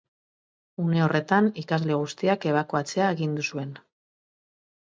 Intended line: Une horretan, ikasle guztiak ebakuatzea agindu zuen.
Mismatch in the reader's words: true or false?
false